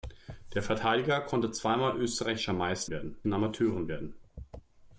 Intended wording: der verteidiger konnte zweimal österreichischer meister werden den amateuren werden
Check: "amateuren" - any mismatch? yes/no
no